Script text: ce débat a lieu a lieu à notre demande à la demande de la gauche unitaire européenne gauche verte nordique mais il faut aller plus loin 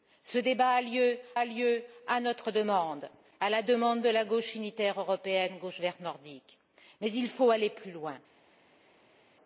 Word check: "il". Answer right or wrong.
right